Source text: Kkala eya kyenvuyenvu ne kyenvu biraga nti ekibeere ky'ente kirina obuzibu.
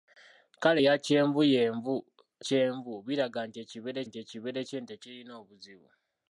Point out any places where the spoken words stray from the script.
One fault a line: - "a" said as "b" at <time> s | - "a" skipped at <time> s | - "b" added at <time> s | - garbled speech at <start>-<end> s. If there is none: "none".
- "ne" skipped at 1.9 s
- "nti ekibeere" added at 4.1 s